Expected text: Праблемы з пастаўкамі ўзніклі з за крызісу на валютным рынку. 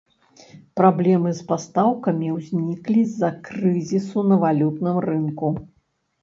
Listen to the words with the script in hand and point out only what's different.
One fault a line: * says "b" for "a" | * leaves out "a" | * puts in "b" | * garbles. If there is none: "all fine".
all fine